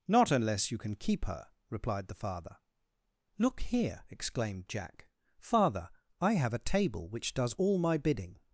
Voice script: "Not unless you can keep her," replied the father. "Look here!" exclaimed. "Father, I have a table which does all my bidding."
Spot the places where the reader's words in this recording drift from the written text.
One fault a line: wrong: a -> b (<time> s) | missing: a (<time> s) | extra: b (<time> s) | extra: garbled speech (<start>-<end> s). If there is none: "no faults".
extra: Jack (4.7 s)